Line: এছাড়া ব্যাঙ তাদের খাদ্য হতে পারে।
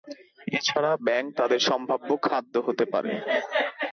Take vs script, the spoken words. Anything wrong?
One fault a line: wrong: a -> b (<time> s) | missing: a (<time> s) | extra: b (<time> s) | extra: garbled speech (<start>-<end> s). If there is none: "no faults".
extra: সম্ভাব্য (1.7 s)